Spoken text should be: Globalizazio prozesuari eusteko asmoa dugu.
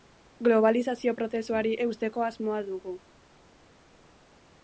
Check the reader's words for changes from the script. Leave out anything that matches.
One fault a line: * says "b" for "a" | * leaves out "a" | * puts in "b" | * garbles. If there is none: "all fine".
all fine